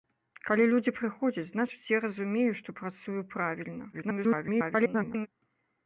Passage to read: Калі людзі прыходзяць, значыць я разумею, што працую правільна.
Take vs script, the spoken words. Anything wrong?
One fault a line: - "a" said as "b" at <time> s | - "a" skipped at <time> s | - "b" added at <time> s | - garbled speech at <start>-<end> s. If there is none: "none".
- garbled speech at 3.9-5.3 s